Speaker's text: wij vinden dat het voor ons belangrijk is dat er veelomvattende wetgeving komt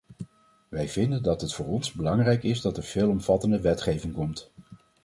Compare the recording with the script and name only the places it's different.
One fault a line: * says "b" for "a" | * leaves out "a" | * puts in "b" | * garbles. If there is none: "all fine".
all fine